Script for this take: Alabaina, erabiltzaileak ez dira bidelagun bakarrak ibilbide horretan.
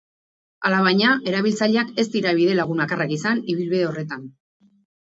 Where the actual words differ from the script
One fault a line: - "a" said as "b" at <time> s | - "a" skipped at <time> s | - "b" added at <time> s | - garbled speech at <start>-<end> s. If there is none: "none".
- "izan" added at 3.2 s